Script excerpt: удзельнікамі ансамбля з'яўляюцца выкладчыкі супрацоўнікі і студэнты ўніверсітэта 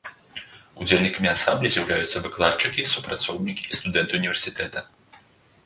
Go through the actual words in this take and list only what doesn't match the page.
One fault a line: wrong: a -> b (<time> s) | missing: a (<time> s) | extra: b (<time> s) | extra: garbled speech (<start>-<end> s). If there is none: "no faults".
no faults